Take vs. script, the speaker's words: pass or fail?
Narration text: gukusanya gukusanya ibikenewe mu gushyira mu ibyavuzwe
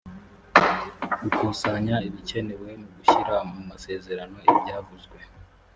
fail